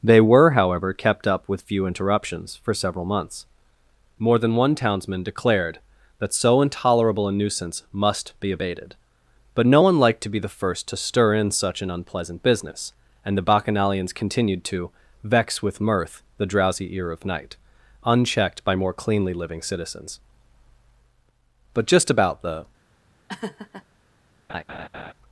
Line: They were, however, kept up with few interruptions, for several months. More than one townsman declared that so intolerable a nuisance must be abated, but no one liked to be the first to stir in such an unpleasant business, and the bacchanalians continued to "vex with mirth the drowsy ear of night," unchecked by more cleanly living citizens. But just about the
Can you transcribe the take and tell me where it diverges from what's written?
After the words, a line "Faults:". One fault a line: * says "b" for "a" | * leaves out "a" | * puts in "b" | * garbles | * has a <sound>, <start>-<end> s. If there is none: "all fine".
They were, however, kept up with few interruptions, for several months. More than one townsman declared that so intolerable a nuisance must be abated, but no one liked to be the first to stir in such an unpleasant business, and the bacchanalians continued to "vex with mirth the drowsy ear of night," unchecked by more cleanly living citizens. But just about the
Faults:
* has a laugh, 23.3-23.9 s
* has a laugh, 24.5-25.1 s